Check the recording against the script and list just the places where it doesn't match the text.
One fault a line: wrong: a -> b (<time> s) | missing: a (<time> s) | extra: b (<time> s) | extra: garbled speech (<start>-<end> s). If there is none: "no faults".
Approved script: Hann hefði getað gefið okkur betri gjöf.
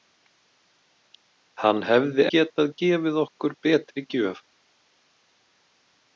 no faults